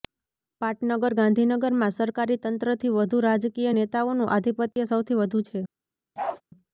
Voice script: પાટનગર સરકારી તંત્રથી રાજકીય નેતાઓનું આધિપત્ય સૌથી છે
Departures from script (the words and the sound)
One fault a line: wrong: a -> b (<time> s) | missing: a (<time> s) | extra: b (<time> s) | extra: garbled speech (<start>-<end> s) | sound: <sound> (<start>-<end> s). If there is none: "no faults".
extra: ગાંધીનગરમાં (1.1 s)
extra: વધુ (3.0 s)
sound: dropout (4.7-4.8 s)
extra: વધુ (5.2 s)
sound: bark (6.2-6.4 s)